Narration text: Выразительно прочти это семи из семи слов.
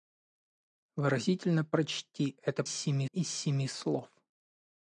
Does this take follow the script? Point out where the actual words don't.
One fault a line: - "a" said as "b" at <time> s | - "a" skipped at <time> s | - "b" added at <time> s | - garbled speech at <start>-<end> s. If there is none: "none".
none